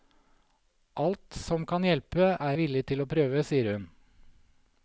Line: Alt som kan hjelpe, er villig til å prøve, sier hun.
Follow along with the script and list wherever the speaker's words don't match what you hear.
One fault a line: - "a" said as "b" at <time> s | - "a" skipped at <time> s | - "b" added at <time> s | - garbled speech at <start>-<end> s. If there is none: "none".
none